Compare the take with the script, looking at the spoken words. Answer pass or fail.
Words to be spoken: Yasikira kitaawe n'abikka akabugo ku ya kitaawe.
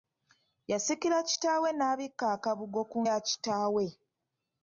pass